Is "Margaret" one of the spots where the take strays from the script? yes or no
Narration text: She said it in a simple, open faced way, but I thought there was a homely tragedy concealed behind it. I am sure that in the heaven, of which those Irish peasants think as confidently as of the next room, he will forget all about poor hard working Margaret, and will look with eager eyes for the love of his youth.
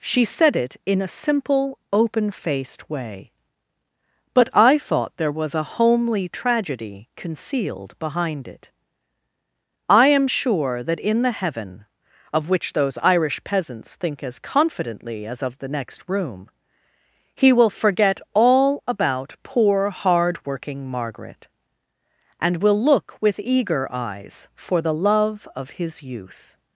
no